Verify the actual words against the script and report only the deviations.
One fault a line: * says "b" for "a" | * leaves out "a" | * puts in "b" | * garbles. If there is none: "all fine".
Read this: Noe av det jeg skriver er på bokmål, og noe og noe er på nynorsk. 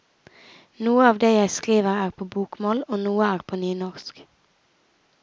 * leaves out "og noe"